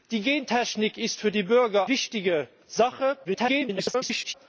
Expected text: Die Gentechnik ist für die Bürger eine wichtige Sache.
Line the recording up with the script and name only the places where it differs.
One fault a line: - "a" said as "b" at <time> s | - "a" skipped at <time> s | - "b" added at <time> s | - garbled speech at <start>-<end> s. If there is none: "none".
- "eine" skipped at 1.9 s
- garbled speech at 3.2-4.3 s